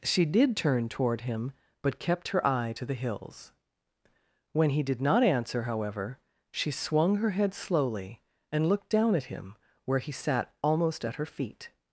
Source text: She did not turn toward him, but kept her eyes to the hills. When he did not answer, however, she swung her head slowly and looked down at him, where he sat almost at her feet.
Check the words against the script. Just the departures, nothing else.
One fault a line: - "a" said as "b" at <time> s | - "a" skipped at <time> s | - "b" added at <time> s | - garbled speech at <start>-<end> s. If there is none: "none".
- "not" skipped at 0.6 s
- "eyes" said as "eye" at 2.5 s